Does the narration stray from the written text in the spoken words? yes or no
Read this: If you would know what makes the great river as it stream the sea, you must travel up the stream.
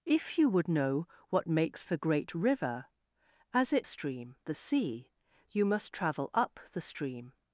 no